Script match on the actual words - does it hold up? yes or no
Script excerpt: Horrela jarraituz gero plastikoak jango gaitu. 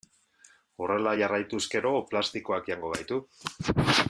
yes